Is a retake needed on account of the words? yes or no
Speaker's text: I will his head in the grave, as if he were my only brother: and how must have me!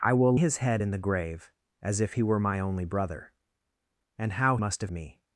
no